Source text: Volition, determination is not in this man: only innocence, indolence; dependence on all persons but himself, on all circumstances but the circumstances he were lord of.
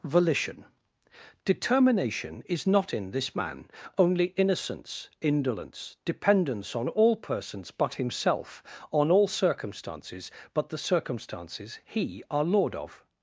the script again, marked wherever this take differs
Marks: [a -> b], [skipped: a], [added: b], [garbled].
Volition, determination is not in this man: only innocence, indolence; dependence on all persons but himself, on all circumstances but the circumstances he [were -> are] lord of.